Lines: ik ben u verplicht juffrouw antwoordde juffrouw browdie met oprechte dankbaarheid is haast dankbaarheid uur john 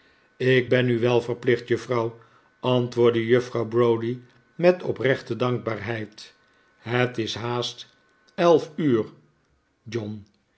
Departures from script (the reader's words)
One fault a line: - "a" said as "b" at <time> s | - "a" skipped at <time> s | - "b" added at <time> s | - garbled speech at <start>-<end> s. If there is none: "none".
- "wel" added at 1.0 s
- "het" added at 6.8 s
- "dankbaarheid" said as "elf" at 8.3 s